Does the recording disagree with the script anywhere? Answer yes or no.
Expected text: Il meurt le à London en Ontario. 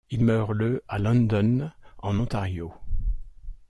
no